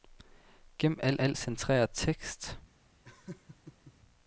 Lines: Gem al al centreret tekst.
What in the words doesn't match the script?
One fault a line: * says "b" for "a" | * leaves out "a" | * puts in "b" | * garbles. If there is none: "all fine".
all fine